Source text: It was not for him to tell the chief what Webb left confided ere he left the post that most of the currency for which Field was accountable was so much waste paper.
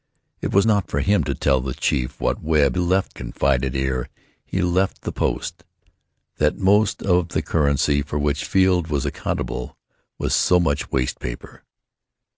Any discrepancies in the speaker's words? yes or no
no